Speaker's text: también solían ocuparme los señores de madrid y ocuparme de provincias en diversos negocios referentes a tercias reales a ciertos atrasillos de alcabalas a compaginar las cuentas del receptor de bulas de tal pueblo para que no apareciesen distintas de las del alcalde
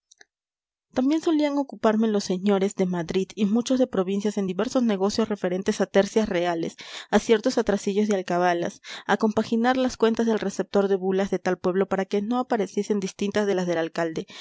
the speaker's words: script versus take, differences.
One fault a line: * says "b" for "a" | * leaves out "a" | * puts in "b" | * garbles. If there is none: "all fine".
* says "muchos" for "ocuparme"